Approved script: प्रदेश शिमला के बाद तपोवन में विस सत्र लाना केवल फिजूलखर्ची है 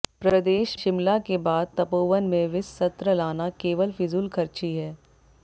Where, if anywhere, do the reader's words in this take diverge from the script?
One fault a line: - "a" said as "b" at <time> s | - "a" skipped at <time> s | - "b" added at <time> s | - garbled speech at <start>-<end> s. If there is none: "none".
none